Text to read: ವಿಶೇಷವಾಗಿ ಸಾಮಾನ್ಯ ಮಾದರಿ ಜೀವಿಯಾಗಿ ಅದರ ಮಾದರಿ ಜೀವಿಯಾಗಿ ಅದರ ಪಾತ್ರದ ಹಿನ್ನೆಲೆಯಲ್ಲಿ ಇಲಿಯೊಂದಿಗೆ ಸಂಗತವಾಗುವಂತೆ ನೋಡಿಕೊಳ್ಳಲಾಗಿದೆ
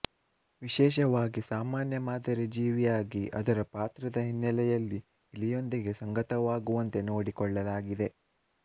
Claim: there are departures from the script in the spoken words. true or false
true